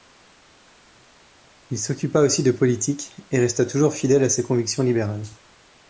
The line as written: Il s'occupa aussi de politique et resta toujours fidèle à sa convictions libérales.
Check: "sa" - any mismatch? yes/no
yes